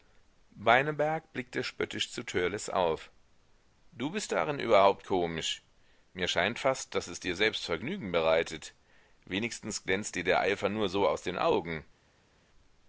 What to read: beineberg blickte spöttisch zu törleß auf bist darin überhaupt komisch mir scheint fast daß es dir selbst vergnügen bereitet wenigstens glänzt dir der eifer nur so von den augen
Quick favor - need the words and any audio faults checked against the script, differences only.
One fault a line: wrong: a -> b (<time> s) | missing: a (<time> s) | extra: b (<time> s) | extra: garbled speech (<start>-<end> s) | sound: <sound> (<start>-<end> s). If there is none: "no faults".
extra: du (3.9 s)
wrong: von -> aus (11.1 s)